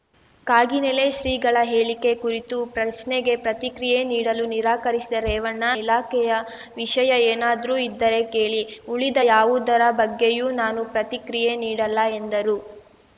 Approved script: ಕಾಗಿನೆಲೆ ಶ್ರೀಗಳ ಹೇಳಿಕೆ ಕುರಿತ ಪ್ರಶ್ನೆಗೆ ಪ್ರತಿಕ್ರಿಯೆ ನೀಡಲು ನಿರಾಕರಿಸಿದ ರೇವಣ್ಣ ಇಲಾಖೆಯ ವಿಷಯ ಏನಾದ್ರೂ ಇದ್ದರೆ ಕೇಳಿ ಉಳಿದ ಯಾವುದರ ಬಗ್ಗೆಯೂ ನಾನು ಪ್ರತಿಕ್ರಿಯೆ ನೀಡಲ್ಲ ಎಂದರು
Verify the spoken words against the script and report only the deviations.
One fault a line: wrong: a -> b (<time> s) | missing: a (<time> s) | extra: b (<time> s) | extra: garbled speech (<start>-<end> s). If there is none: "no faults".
no faults